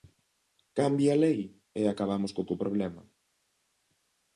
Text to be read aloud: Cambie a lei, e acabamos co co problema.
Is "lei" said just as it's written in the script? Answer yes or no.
yes